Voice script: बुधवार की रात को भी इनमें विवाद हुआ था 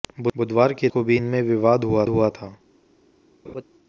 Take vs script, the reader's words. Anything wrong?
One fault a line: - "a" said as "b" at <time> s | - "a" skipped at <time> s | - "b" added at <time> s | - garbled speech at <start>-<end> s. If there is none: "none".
- "रात" skipped at 0.9 s
- "हुआ" added at 2.1 s